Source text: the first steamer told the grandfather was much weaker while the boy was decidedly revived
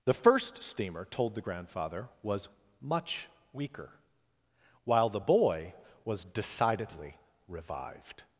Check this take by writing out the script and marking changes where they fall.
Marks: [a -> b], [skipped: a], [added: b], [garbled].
the first steamer told the grandfather was much weaker while the boy was decidedly revived